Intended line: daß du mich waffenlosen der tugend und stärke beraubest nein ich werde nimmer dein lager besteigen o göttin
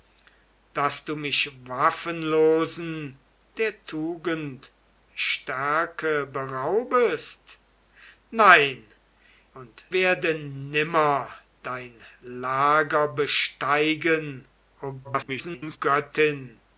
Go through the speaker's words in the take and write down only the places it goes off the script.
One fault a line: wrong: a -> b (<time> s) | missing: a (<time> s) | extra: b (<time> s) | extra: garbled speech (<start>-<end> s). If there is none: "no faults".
missing: und (4.7 s)
wrong: ich -> und (9.5 s)
extra: garbled speech (15.0-15.8 s)